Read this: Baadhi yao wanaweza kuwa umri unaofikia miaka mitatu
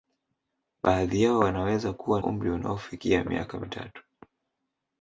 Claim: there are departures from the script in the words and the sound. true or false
false